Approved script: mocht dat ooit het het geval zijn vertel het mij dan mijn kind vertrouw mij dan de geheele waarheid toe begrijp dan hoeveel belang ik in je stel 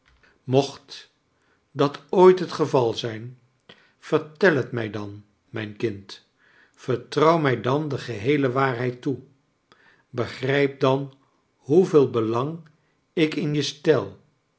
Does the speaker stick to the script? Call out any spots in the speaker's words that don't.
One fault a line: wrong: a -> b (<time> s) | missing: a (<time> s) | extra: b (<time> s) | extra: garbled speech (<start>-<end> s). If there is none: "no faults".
missing: het (2.5 s)